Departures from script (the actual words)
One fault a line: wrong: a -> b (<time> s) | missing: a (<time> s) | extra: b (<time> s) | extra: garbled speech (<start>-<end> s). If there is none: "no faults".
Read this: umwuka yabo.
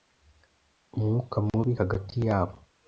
extra: mubi hagati (1.5 s)